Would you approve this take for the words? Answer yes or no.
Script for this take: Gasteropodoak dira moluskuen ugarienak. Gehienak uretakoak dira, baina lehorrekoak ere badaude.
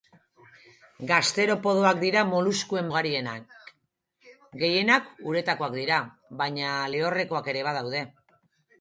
yes